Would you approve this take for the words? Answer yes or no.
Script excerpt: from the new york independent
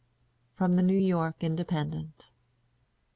yes